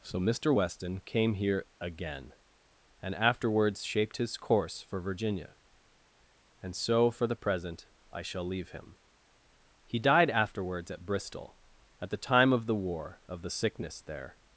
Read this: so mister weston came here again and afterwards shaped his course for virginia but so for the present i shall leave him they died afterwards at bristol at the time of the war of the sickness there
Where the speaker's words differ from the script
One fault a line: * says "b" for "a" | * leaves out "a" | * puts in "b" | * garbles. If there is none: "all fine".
* says "and" for "but"
* says "he" for "they"